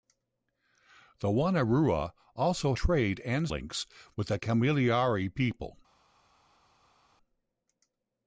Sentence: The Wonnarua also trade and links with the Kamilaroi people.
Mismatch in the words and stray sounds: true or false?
false